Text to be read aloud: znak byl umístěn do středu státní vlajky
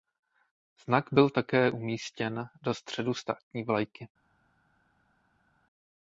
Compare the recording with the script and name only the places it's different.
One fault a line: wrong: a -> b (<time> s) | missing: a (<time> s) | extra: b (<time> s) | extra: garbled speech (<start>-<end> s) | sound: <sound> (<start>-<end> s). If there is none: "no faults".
extra: také (1.3 s)